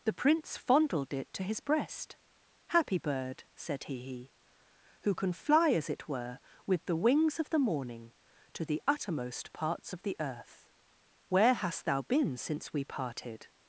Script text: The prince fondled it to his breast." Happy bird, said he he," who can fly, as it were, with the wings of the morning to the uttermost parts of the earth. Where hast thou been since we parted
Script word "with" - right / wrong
right